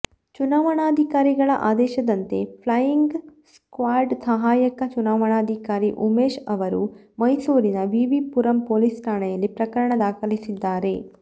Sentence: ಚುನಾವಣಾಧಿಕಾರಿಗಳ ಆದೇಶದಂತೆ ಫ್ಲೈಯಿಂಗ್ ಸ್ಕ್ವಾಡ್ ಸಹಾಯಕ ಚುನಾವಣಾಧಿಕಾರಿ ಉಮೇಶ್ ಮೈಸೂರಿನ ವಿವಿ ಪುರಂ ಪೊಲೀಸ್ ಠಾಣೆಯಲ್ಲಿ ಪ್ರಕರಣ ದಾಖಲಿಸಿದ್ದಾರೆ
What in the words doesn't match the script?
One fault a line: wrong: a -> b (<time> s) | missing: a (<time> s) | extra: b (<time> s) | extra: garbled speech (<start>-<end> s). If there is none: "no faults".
extra: ಅವರು (6.5 s)